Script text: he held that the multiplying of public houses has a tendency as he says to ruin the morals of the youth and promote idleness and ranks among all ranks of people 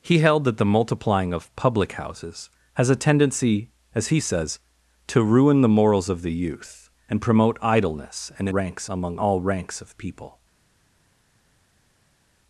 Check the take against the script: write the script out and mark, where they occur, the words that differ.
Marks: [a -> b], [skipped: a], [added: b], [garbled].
he held that the multiplying of public houses has a tendency as he says to ruin the morals of the youth and promote idleness and ranks among all ranks of people